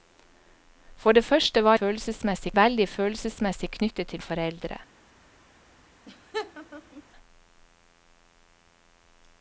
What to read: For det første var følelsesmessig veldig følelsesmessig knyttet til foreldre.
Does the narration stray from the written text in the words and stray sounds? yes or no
yes